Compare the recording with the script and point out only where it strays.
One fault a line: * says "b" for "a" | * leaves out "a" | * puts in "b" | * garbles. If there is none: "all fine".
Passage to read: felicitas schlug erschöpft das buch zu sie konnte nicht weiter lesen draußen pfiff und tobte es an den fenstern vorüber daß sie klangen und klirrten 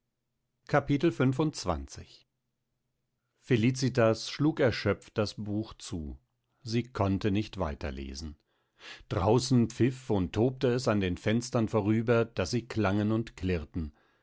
all fine